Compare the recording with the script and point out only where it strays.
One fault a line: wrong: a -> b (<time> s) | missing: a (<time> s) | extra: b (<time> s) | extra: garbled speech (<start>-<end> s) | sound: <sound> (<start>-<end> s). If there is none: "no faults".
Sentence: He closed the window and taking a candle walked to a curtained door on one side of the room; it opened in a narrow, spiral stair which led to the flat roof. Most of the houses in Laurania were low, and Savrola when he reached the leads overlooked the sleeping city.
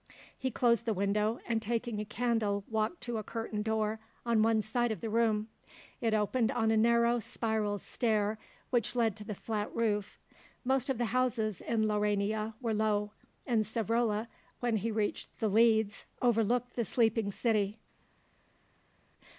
wrong: in -> on (6.5 s)